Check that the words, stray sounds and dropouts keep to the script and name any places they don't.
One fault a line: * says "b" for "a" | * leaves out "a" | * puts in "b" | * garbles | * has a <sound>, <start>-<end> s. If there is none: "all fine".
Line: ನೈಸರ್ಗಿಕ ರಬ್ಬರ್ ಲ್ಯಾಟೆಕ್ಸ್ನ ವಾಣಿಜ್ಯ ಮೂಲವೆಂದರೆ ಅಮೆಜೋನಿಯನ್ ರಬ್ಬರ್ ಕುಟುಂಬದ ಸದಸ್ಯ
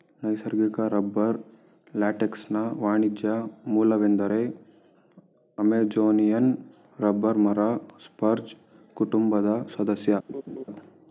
* puts in "ಮರ ಸ್ಪರ್ಜ್"
* has a laugh, 10.3-10.6 s